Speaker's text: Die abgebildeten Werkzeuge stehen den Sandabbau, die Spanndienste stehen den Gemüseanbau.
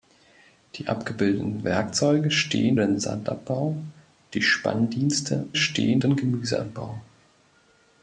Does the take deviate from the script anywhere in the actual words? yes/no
no